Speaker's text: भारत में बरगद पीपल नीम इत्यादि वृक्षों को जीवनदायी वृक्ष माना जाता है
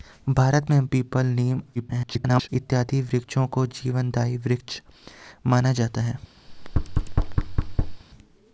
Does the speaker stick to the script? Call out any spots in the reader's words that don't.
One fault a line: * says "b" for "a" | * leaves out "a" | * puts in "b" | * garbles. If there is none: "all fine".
* leaves out "बरगद"
* garbles